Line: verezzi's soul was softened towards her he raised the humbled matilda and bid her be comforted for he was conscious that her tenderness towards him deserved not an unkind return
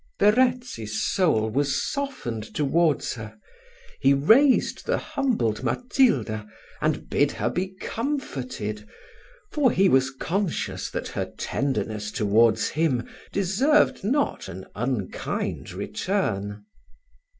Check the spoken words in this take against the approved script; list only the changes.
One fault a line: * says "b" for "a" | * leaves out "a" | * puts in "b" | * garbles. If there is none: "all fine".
all fine